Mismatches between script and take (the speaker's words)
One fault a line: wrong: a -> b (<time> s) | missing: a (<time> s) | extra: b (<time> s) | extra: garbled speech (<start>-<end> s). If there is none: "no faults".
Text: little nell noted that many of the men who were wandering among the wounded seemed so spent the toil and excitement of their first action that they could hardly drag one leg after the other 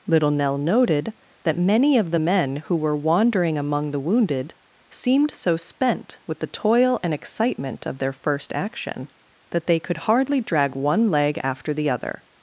extra: with (6.2 s)